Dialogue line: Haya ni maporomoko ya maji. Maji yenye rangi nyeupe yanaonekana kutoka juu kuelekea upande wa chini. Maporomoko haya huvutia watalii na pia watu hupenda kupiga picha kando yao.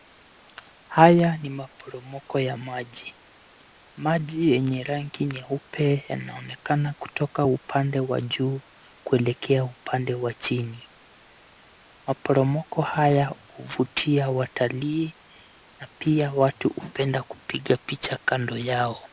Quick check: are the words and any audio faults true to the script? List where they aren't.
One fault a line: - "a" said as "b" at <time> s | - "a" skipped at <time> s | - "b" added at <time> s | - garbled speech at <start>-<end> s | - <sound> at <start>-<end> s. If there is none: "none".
- "upande wa" added at 7.4 s